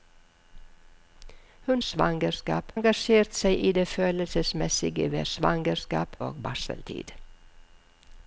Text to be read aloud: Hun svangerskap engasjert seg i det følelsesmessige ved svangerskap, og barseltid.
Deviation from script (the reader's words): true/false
false